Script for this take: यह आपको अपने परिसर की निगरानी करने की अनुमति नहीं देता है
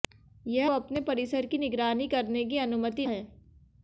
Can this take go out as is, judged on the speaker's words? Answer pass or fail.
fail